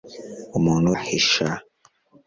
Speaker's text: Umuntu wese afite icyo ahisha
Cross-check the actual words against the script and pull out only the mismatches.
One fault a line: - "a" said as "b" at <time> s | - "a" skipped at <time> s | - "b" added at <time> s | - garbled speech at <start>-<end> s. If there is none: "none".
- "wese afite icyo" skipped at 0.9 s